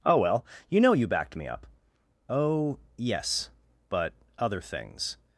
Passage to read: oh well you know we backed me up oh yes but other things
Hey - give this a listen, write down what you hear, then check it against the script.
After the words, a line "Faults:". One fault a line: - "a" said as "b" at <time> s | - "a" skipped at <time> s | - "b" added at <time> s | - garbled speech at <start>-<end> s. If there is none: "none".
oh well you know you backed me up oh yes but other things
Faults:
- "we" said as "you" at 0.9 s